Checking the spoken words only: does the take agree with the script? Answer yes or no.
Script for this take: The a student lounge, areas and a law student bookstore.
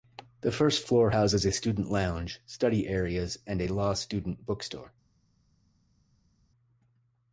no